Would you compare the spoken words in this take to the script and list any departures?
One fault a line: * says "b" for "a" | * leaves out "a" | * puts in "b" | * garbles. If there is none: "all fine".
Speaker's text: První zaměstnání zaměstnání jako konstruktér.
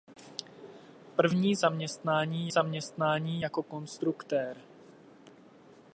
all fine